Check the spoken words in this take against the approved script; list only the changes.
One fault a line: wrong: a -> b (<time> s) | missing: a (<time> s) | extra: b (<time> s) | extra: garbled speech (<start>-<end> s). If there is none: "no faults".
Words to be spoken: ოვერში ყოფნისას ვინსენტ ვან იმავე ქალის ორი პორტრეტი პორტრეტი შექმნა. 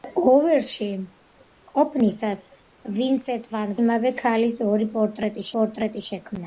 no faults